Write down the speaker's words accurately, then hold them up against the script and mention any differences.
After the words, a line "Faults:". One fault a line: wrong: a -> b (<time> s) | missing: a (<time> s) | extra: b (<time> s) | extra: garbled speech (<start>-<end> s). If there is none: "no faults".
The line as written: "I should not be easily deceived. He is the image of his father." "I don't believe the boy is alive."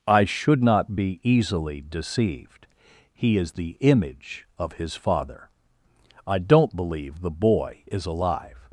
"I should not be easily deceived. He is the image of his father." "I don't believe the boy is alive."
Faults:
no faults